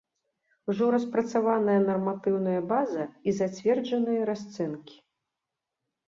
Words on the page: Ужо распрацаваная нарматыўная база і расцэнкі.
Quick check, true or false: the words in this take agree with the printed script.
false